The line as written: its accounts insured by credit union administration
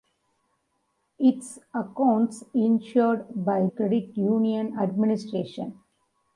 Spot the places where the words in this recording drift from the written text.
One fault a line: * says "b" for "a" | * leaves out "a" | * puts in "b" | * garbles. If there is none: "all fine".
all fine